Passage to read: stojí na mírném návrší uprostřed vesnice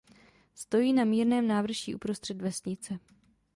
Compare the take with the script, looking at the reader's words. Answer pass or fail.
pass